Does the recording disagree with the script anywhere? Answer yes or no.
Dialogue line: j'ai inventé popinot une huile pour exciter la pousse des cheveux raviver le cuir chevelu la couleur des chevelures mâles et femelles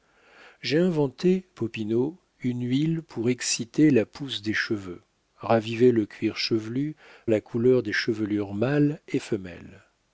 no